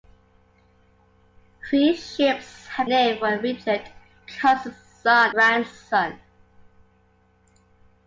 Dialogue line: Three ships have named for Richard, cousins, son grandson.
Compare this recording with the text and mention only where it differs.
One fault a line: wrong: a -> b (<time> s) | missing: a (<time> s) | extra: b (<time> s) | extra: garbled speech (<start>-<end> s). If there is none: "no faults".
no faults